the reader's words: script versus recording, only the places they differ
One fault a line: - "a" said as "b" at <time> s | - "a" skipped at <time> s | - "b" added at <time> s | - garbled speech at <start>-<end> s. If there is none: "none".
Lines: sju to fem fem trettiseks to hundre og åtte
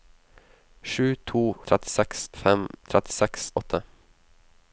- "fem" said as "trettiseks" at 1.7 s
- "to hundre" skipped at 3.5 s